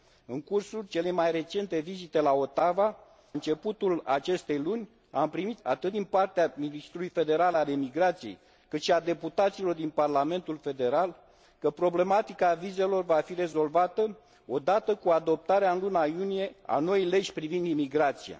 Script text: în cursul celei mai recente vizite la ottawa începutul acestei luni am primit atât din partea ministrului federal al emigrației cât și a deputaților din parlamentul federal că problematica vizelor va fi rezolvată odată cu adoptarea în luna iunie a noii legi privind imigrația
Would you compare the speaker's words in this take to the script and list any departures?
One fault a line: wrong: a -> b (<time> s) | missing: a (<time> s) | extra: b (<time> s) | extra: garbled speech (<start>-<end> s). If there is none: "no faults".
no faults